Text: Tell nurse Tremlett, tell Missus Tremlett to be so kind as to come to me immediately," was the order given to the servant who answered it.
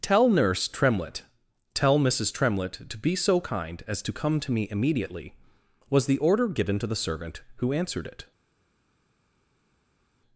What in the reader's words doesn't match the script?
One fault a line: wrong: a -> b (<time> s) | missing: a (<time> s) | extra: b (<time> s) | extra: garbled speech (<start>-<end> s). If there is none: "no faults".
no faults